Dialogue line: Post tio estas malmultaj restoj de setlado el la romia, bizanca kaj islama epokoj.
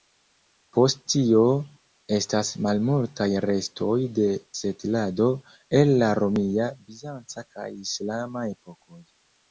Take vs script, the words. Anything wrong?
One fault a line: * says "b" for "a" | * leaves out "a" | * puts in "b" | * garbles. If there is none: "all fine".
all fine